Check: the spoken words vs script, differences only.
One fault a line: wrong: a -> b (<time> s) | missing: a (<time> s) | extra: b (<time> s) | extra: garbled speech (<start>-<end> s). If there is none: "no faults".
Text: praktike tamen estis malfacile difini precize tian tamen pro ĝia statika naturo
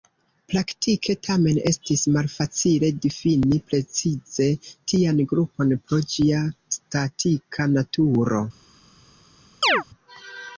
wrong: tamen -> grupon (5.3 s)